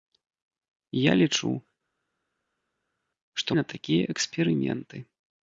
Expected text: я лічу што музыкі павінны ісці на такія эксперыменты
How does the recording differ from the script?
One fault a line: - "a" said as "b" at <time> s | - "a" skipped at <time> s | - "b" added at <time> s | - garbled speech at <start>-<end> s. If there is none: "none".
- "музыкі павінны ісці" skipped at 3.5 s